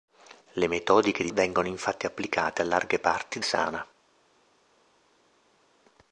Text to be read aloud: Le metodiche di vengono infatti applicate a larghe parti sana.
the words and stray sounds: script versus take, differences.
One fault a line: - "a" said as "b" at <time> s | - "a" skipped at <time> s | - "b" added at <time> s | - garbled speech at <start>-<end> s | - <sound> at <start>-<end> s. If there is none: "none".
none